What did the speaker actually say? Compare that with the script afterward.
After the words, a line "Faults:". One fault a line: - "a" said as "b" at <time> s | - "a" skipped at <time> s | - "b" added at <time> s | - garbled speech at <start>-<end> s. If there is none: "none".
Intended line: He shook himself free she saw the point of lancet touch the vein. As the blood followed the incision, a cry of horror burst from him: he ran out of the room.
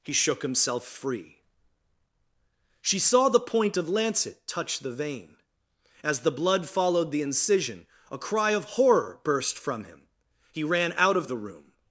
He shook himself free she saw the point of lancet touch the vein. As the blood followed the incision, a cry of horror burst from him: he ran out of the room.
Faults:
none